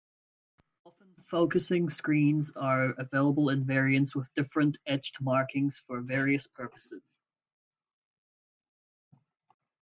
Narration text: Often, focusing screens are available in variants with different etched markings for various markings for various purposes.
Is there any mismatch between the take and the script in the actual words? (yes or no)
yes